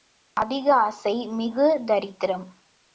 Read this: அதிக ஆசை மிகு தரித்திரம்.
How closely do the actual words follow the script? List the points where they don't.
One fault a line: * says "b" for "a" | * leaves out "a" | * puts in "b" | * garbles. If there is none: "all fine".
all fine